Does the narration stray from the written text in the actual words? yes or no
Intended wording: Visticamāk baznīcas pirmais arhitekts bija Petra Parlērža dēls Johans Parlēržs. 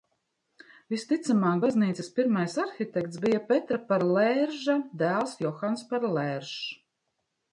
no